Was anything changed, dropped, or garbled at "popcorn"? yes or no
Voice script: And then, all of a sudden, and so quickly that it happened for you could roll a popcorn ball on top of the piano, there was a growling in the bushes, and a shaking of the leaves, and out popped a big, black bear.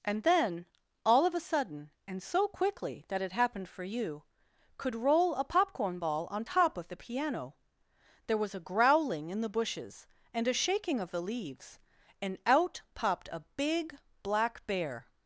no